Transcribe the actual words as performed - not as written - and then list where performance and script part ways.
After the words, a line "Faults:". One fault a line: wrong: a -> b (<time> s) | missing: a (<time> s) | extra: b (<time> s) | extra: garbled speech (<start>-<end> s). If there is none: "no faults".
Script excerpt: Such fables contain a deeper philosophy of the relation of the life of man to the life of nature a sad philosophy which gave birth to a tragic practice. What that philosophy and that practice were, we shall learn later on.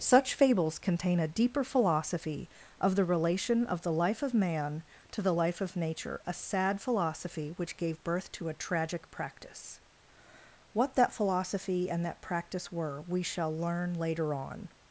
Such fables contain a deeper philosophy of the relation of the life of man to the life of nature a sad philosophy which gave birth to a tragic practice. What that philosophy and that practice were, we shall learn later on.
Faults:
no faults